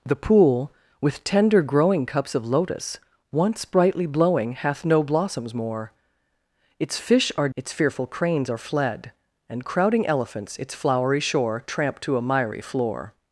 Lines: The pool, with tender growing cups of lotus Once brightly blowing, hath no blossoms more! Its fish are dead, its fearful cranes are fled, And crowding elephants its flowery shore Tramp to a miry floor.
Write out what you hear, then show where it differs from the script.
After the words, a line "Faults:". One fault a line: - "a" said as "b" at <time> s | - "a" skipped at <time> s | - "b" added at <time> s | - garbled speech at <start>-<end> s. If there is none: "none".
The pool, with tender growing cups of lotus Once brightly blowing, hath no blossoms more! Its fish are its fearful cranes are fled, And crowding elephants its flowery shore Tramp to a miry floor.
Faults:
- "dead" skipped at 7.5 s